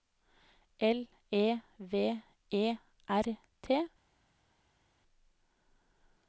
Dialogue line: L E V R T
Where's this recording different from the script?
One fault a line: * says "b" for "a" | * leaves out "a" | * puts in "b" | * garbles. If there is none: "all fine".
* puts in "E"